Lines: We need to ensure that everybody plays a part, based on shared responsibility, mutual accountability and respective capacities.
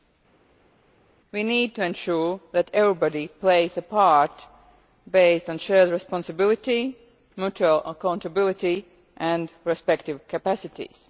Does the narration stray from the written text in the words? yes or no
no